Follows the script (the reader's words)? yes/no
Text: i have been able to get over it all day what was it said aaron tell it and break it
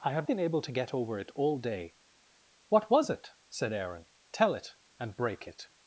yes